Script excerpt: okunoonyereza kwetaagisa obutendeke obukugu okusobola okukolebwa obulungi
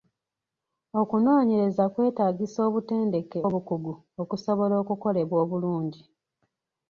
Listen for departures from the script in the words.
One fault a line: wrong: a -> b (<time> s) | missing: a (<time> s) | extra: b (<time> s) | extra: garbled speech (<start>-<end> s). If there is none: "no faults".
no faults